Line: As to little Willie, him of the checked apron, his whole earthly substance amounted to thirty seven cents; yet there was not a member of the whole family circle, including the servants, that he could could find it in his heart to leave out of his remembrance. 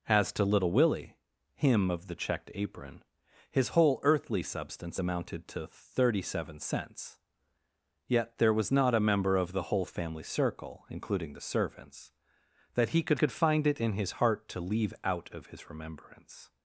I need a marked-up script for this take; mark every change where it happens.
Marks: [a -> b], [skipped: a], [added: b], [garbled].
As to little Willie, him of the checked apron, his whole earthly substance amounted to thirty seven cents; yet there was not a member of the whole family circle, including the servants, that he could could find it in his heart to leave out of his remembrance.